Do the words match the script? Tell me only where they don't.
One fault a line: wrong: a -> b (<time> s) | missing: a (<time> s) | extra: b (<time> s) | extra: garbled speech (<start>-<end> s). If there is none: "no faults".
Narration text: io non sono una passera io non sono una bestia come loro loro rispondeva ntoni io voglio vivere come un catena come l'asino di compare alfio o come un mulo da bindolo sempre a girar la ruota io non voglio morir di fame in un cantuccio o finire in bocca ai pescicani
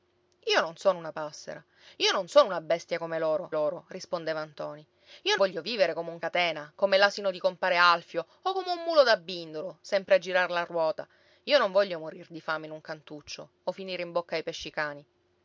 no faults